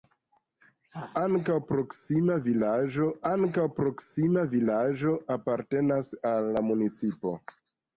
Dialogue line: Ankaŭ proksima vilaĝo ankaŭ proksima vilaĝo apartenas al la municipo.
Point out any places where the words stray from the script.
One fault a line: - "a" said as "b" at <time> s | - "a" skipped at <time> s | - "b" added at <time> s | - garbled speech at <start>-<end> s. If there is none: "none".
none